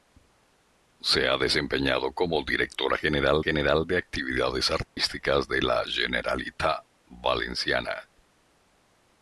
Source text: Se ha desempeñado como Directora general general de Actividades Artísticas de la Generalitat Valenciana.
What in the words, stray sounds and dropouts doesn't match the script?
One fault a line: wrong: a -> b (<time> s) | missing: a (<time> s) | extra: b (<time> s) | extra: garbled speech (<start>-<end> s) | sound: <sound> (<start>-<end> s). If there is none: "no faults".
sound: dropout (4.8-5.0 s)